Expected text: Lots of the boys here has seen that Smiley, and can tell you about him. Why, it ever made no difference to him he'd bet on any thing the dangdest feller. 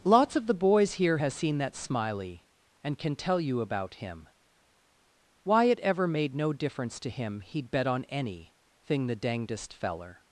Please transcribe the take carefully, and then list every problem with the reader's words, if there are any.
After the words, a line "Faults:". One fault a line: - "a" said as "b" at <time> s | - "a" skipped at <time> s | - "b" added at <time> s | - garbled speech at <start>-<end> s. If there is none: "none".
Lots of the boys here has seen that Smiley, and can tell you about him. Why, it ever made no difference to him he'd bet on any thing the dangdest feller.
Faults:
none